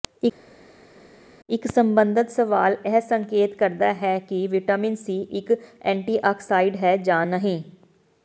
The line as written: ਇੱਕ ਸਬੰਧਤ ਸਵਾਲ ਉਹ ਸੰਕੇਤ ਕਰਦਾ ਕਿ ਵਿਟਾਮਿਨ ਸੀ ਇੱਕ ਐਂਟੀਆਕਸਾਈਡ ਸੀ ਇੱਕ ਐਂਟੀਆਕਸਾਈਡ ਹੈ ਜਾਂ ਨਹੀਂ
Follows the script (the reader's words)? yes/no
no